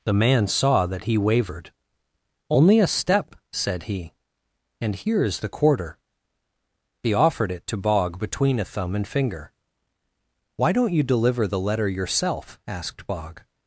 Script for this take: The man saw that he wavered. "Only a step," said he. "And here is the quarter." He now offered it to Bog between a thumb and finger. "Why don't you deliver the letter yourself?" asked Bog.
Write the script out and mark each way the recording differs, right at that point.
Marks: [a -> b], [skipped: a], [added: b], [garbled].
The man saw that he wavered. "Only a step," said he. "And here is the quarter." He [skipped: now] offered it to Bog between a thumb and finger. "Why don't you deliver the letter yourself?" asked Bog.